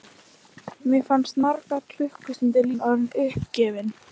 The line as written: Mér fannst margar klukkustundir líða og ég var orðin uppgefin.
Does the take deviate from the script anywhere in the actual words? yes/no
yes